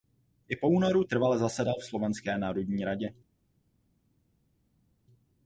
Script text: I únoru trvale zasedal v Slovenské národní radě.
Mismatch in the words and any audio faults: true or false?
true